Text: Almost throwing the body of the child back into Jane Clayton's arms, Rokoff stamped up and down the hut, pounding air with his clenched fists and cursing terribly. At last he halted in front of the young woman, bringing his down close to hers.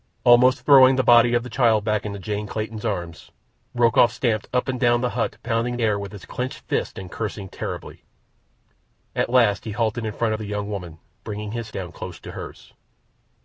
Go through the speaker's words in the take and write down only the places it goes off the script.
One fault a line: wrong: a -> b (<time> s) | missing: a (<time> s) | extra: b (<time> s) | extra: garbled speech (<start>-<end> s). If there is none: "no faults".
no faults